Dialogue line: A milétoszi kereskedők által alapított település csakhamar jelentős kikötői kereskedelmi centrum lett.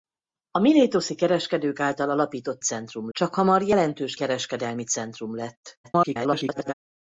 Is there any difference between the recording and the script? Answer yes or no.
yes